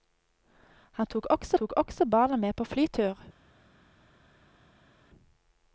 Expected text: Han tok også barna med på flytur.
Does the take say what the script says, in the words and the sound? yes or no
no